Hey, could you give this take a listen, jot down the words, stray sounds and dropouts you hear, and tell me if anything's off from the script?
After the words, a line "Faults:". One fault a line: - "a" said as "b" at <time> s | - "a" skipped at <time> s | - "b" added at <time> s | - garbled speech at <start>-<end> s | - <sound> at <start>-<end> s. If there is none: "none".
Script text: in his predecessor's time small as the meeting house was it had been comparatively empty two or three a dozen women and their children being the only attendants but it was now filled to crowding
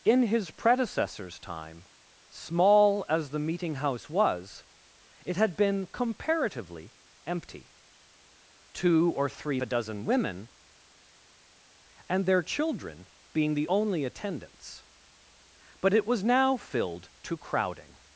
in his predecessor's time small as the meeting house was it had been comparatively empty two or three a dozen women and their children being the only attendants but it was now filled to crowding
Faults:
none